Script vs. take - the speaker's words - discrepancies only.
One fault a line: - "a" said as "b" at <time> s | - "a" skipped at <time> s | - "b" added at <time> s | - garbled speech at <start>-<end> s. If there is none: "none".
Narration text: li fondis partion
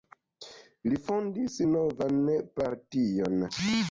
- "novan" added at 1.7 s